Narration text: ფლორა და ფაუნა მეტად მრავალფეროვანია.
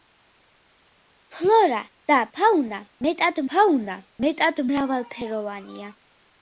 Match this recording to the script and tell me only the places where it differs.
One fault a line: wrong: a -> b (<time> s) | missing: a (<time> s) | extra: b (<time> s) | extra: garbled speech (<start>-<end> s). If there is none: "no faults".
extra: ფაუნა მეტად (3.6 s)